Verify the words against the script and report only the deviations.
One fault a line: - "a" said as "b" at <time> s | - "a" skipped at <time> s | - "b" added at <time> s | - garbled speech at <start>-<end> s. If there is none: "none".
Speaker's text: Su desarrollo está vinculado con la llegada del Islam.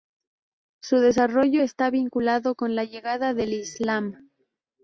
none